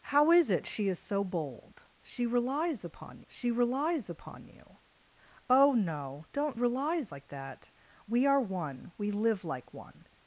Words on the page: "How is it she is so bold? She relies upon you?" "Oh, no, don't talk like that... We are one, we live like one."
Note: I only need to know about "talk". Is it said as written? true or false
false